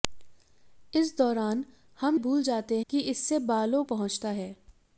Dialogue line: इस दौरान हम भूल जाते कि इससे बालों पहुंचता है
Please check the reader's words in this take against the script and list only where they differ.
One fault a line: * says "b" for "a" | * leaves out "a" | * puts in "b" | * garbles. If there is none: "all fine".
all fine